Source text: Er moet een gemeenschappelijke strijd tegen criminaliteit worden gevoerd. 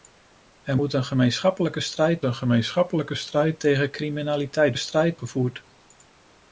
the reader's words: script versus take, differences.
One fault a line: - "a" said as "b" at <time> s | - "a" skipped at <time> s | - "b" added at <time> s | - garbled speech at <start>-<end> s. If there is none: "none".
- "een gemeenschappelijke strijd" added at 2.2 s
- "worden" said as "strijd" at 4.8 s